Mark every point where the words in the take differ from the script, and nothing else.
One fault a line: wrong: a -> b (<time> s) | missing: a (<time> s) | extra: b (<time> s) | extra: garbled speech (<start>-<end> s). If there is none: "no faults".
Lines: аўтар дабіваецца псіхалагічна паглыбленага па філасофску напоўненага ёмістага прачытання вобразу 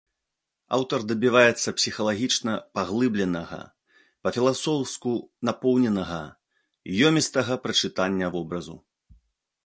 no faults